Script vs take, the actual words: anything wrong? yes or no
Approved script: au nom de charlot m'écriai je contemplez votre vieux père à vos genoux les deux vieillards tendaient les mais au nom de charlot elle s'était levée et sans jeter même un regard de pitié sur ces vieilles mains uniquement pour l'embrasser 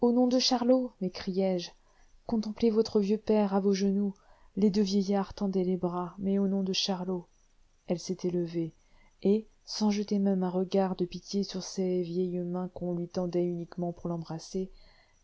yes